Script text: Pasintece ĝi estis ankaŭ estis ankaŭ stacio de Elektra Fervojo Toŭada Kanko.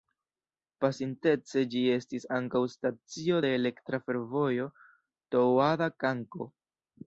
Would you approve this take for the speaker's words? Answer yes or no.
no